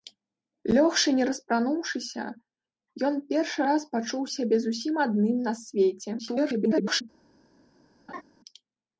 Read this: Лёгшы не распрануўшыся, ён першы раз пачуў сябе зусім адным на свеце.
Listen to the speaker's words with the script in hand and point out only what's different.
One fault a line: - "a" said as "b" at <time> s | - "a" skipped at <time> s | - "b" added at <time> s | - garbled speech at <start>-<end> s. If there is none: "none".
- garbled speech at 6.2-7.0 s